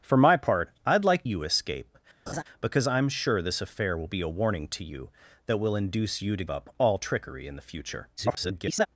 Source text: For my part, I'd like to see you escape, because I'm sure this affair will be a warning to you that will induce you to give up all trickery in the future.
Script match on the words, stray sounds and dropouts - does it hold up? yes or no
no